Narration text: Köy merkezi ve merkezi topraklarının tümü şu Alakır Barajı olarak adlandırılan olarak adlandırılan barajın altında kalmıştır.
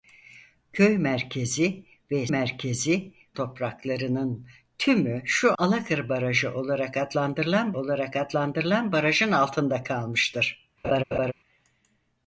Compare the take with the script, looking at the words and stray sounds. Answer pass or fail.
fail